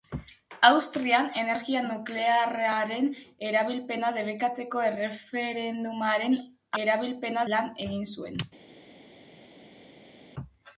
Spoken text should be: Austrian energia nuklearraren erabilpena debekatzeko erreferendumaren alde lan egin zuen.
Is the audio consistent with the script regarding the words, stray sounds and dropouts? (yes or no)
no